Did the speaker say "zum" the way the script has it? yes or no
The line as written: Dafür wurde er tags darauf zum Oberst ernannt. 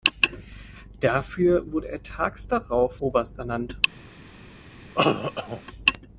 no